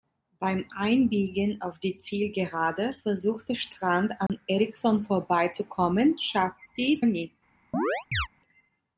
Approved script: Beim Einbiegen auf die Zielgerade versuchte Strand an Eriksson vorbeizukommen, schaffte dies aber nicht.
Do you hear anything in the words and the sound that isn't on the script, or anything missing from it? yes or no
yes